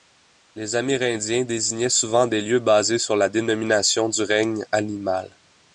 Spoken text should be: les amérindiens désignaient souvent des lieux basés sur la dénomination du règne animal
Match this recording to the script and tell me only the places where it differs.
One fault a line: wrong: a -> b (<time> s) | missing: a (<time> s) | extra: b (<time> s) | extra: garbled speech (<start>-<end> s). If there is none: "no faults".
no faults